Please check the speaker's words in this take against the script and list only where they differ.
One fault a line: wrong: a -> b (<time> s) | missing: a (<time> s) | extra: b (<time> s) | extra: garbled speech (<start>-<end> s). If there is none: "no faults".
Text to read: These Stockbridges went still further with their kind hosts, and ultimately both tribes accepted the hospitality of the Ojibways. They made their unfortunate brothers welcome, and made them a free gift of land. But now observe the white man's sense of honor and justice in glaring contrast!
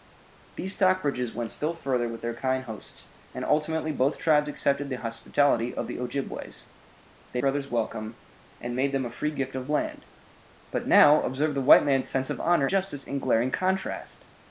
missing: made their unfortunate (7.4 s)
missing: and (12.7 s)